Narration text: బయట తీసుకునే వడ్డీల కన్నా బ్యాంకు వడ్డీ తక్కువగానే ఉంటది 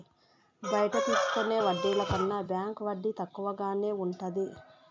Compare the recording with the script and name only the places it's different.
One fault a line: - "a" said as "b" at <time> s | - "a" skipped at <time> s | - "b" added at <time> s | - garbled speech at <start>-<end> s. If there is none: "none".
none